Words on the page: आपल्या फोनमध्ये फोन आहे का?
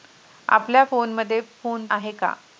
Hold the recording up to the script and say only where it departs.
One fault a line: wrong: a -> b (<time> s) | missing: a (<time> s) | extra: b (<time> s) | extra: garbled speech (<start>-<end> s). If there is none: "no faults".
no faults